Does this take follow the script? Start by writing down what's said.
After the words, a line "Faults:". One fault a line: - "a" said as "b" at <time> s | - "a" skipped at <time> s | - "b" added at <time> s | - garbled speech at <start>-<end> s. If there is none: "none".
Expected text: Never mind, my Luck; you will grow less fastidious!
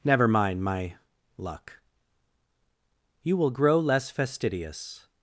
Never mind, my Luck; you will grow less fastidious!
Faults:
none